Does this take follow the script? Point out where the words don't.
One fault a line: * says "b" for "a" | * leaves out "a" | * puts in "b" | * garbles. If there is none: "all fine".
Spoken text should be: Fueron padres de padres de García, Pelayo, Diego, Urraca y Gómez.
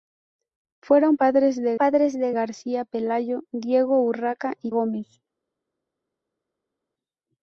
all fine